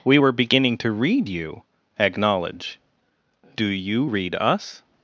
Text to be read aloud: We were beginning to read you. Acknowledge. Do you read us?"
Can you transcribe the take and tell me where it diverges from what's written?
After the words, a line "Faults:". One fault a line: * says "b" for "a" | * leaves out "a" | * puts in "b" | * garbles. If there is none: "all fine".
We were beginning to read you. Acknowledge. Do you read us?"
Faults:
all fine